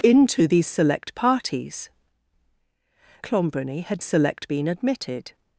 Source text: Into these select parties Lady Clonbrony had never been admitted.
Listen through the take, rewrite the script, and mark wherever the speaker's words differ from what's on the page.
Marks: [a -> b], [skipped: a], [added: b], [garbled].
Into these select parties [skipped: Lady] Clonbrony had [never -> select] been admitted.